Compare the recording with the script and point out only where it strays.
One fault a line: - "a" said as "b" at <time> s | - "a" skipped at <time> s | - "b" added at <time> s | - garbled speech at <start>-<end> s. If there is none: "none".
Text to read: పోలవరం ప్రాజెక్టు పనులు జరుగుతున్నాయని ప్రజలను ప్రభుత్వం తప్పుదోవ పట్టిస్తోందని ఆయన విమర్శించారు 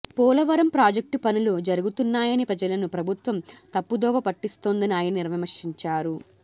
none